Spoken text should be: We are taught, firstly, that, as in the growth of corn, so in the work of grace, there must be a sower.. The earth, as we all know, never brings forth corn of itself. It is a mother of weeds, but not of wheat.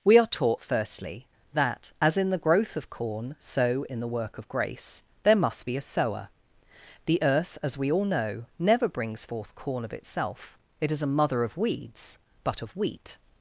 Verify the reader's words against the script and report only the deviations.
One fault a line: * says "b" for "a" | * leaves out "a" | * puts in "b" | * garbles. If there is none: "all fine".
* leaves out "not"